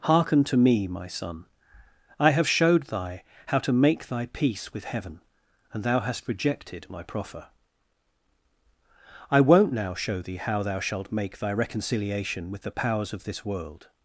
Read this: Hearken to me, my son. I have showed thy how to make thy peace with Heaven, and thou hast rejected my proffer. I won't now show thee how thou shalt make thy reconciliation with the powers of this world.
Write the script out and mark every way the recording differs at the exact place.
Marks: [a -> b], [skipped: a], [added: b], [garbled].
Hearken to me, my son. I have showed thy how to make thy peace with Heaven, and thou hast rejected my proffer. I won't now show thee how thou shalt make thy reconciliation with the powers of this world.